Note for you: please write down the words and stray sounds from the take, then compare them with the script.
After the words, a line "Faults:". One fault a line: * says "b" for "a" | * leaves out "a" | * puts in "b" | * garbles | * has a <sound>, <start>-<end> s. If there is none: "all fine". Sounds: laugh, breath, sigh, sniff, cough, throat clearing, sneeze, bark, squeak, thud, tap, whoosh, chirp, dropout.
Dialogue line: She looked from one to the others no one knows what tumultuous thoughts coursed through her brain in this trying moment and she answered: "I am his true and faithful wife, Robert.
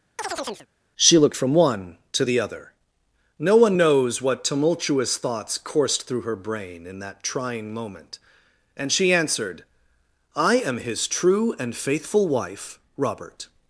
She looked from one to the other no one knows what tumultuous thoughts coursed through her brain in that trying moment and she answered: "I am his true and faithful wife, Robert.
Faults:
* has a chirp, 0.2-0.7 s
* says "other" for "others"
* says "that" for "this"